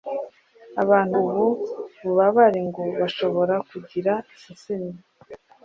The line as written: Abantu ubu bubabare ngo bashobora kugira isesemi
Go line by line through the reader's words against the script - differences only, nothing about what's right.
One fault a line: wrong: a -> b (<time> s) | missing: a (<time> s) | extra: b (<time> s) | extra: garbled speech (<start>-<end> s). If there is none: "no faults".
no faults